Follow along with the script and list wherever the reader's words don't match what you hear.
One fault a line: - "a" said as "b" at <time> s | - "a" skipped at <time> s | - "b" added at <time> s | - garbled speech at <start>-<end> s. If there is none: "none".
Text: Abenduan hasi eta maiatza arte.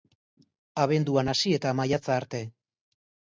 none